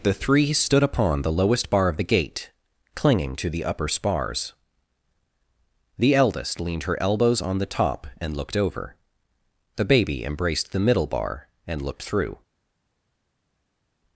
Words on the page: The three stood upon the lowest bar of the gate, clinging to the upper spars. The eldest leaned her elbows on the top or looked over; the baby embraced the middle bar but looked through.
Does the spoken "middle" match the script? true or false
true